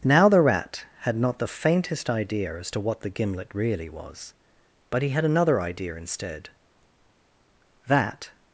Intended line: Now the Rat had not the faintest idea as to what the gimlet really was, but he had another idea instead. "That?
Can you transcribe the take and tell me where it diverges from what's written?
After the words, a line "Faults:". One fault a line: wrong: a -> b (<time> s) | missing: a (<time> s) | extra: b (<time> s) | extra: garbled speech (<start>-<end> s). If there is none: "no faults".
Now the Rat had not the faintest idea as to what the gimlet really was, but he had another idea instead. "That?
Faults:
no faults